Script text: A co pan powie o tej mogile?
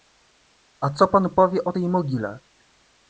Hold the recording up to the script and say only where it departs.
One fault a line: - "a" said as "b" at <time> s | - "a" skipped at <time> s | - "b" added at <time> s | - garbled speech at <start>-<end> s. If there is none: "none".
none